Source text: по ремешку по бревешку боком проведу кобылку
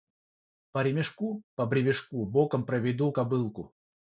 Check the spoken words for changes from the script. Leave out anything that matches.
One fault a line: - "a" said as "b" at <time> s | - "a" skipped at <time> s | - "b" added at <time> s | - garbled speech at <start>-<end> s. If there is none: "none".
none